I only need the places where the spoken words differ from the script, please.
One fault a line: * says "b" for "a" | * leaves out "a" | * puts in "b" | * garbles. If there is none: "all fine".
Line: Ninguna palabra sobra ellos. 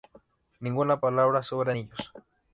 all fine